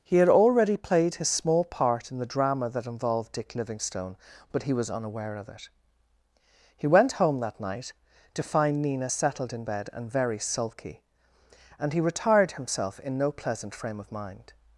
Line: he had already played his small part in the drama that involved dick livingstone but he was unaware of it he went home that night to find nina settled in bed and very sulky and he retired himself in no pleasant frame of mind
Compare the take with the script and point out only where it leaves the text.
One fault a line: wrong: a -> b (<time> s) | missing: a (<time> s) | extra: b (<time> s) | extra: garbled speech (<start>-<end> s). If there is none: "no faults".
no faults